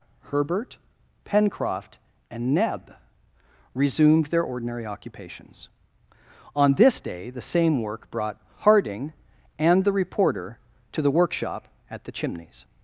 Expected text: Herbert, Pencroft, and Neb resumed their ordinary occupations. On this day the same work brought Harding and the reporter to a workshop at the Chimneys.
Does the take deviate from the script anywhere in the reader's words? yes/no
yes